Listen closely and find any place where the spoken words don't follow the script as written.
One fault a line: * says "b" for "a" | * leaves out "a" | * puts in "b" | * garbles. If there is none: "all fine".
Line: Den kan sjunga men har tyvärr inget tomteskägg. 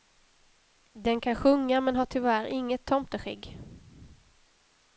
all fine